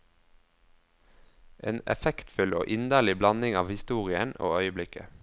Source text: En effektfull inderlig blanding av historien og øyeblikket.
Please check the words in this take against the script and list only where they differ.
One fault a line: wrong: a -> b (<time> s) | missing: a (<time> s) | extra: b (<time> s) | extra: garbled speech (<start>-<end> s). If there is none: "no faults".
extra: og (2.5 s)